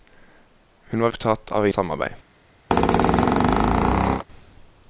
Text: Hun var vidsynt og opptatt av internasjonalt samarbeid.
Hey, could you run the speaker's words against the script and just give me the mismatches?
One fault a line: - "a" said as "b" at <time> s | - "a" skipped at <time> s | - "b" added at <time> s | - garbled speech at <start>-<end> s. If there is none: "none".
- "vidsynt og" skipped at 1.1 s
- "internasjonalt" skipped at 1.7 s